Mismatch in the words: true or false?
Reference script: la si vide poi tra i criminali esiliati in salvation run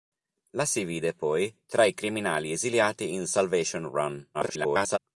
true